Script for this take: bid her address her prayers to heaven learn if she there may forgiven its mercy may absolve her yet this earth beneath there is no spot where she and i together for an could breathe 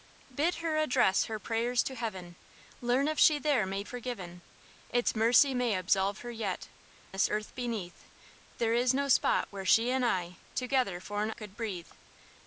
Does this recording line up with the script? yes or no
yes